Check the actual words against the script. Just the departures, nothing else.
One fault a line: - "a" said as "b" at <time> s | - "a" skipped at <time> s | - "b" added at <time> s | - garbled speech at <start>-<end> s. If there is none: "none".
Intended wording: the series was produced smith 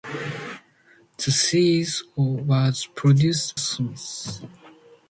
none